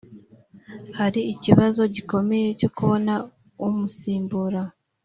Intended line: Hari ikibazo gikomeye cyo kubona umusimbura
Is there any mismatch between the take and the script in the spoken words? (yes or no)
no